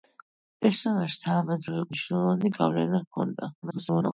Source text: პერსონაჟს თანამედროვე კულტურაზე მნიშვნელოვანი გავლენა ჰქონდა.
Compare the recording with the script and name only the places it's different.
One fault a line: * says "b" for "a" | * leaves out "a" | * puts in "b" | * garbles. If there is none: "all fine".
* leaves out "კულტურაზე"
* garbles